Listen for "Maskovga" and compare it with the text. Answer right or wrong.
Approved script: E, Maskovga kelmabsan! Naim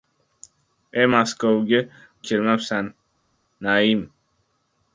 right